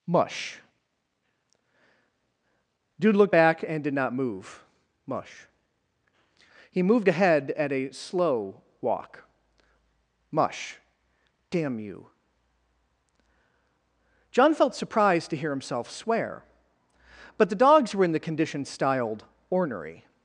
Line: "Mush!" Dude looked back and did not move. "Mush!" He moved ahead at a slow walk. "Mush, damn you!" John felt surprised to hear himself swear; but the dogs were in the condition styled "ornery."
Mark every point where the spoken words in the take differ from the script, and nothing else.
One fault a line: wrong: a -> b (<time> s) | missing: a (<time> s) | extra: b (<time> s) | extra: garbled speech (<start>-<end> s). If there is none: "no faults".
no faults